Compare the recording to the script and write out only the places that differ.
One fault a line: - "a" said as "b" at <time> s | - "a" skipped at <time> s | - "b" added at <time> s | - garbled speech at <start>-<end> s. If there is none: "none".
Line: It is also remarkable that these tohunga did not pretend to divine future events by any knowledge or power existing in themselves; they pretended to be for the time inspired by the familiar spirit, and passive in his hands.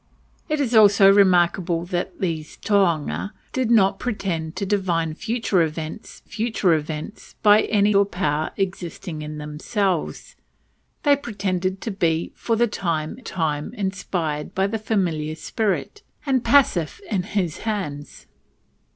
- "future events" added at 6.2 s
- "knowledge" skipped at 8.0 s
- "time" added at 13.2 s